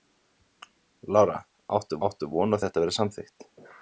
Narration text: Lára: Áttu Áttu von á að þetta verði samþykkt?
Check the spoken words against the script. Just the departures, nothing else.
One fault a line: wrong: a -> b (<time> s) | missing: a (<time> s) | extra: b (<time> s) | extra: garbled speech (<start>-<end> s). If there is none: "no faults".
no faults